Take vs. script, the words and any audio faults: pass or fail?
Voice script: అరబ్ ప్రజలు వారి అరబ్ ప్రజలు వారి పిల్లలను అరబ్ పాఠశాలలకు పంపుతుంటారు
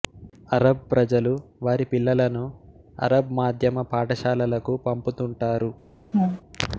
fail